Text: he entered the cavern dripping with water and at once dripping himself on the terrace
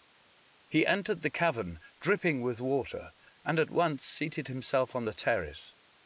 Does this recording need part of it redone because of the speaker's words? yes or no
yes